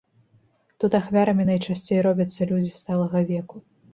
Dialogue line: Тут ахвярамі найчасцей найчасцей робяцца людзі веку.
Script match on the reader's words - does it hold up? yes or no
no